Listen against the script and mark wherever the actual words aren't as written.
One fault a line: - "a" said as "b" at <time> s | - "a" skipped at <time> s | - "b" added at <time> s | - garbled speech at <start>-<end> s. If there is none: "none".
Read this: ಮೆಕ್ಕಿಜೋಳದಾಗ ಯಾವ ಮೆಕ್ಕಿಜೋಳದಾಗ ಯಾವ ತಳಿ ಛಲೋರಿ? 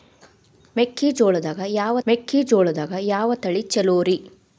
none